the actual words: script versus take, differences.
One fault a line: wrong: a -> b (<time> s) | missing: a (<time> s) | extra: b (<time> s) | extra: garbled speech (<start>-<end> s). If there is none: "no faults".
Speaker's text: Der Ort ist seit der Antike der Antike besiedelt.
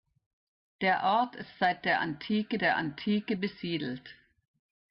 no faults